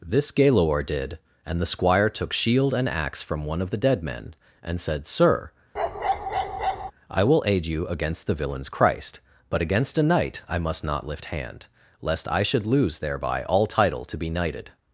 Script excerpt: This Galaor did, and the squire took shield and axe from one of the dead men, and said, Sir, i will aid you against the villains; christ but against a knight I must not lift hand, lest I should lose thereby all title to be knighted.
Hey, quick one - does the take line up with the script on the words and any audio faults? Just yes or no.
no